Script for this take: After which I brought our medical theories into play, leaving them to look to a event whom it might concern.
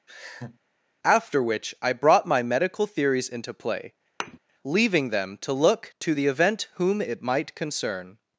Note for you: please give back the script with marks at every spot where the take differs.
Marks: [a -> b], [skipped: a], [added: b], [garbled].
After which I brought [our -> my] medical theories into play, leaving them to look to [a -> the] event whom it might concern.